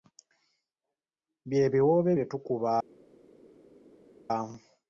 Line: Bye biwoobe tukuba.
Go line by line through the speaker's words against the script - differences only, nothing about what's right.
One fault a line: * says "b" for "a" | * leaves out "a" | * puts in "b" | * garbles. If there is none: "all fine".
* puts in "bye"